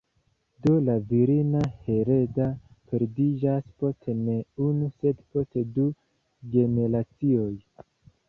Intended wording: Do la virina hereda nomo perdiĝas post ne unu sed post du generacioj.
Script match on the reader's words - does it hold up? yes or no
no